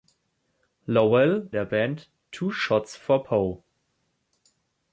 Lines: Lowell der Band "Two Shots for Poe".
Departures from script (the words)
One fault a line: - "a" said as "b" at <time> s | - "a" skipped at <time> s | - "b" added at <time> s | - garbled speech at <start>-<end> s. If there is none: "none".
none